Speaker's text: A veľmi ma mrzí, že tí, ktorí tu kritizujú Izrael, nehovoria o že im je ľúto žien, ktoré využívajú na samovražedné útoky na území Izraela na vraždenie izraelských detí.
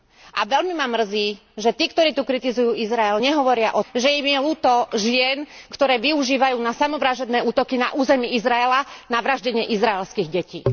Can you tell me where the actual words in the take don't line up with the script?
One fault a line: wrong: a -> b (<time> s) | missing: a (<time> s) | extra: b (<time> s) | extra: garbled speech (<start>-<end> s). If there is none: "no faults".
no faults